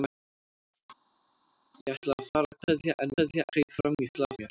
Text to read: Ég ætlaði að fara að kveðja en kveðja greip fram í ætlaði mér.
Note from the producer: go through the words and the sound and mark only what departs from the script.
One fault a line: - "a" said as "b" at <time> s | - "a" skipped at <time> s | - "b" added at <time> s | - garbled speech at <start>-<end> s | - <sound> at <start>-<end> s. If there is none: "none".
none